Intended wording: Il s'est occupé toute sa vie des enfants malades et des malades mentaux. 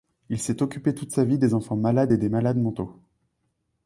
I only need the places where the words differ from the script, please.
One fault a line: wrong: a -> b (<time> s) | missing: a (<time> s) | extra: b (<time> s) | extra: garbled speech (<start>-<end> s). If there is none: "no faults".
no faults